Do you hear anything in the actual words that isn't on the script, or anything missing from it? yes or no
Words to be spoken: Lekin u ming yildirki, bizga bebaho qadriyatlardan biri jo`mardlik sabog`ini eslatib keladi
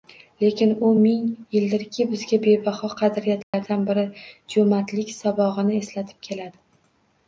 no